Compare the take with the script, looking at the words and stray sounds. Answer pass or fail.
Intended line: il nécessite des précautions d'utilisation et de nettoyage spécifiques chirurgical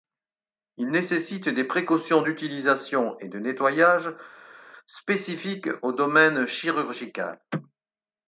fail